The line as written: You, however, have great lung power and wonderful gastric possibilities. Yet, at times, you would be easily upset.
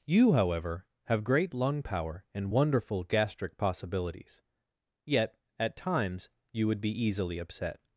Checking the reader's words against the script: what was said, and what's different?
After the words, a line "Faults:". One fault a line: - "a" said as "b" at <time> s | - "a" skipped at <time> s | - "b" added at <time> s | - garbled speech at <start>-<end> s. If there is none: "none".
You, however, have great lung power and wonderful gastric possibilities. Yet, at times, you would be easily upset.
Faults:
none